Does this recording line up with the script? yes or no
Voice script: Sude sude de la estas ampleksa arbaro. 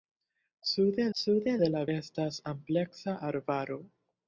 yes